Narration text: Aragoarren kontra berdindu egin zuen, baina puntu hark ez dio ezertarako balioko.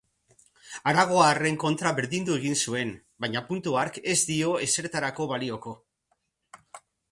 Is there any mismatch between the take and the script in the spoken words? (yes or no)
no